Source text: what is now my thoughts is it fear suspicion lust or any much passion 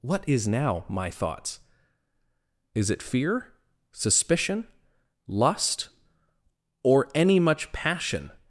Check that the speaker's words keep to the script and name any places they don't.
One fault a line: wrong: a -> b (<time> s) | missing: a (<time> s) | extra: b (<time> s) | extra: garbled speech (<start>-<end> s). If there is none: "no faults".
no faults